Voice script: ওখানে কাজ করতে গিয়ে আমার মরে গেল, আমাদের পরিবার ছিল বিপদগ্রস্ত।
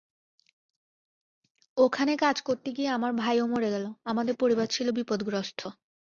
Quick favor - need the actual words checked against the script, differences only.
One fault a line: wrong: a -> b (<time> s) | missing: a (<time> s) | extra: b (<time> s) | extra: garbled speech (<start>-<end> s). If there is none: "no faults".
extra: ভাইও (3.1 s)